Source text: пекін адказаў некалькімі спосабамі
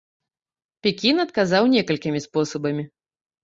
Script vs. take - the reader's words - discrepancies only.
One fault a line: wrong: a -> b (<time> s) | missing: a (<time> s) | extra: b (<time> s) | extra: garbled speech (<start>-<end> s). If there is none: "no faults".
no faults